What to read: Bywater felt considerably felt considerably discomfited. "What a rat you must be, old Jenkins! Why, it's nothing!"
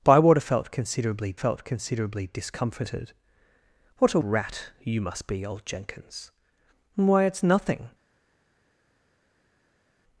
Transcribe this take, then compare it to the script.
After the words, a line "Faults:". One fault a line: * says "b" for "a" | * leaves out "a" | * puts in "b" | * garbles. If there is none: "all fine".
Bywater felt considerably felt considerably discomfited. "What a rat you must be, old Jenkins! Why, it's nothing!"
Faults:
all fine